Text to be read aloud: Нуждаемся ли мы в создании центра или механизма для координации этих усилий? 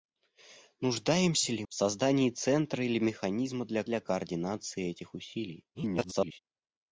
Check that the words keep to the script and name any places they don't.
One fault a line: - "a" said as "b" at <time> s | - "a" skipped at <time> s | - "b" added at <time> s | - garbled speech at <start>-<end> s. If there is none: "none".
- "мы" skipped at 1.6 s
- "для" added at 3.8 s
- garbled speech at 5.7-6.4 s